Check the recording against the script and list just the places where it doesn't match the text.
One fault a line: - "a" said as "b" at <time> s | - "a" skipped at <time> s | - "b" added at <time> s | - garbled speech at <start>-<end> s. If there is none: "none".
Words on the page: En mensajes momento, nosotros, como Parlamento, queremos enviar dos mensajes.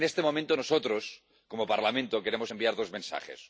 - "mensajes" said as "este" at 0.1 s